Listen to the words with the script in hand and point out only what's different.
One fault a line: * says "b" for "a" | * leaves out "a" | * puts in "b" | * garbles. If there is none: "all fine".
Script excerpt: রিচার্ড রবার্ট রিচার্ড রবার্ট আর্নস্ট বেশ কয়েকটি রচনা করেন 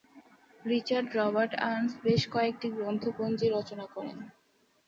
* leaves out "রিচার্ড রবার্ট"
* puts in "গ্রন্থপঞ্জি"